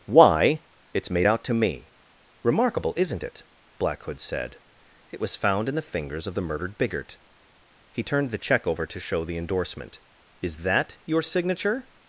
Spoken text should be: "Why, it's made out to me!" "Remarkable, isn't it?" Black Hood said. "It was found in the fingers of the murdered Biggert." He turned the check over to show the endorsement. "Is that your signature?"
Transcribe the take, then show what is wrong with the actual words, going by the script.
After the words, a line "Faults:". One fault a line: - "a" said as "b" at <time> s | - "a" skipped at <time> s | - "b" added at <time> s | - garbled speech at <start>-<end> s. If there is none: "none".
"Why, it's made out to me!" "Remarkable, isn't it?" Black Hood said. "It was found in the fingers of the murdered Biggert." He turned the check over to show the endorsement. "Is that your signature?"
Faults:
none